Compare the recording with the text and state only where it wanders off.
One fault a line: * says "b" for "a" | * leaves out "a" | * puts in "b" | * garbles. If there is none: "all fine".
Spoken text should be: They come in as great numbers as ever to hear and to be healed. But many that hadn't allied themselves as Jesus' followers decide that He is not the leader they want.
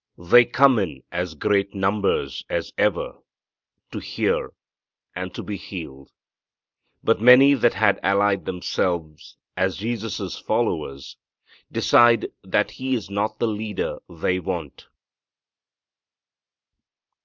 * says "had" for "hadn't"